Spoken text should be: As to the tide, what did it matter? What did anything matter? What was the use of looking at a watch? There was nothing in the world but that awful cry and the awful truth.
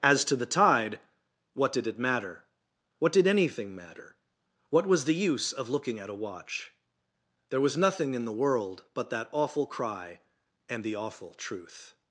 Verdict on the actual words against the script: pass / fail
pass